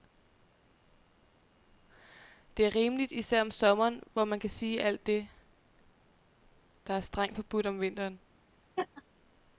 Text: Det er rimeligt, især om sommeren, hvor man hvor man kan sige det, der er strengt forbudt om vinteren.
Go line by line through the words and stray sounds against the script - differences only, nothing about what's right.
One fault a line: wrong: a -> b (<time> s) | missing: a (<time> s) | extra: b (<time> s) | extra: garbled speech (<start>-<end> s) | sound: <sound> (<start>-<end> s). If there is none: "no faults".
missing: hvor man (4.4 s)
extra: alt (4.8 s)
sound: laugh (8.8-9.0 s)